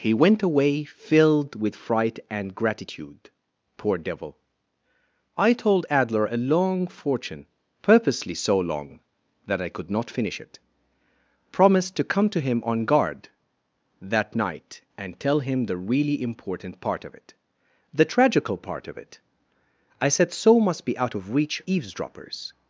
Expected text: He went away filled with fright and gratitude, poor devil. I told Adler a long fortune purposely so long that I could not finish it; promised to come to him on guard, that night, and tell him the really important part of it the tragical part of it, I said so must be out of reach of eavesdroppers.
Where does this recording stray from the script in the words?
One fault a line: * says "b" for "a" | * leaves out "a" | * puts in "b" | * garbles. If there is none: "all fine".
* leaves out "of"